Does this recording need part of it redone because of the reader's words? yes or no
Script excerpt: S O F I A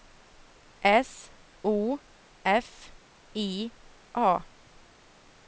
no